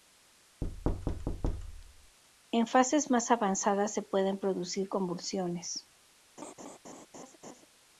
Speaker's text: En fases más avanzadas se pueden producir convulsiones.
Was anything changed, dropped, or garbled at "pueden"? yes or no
no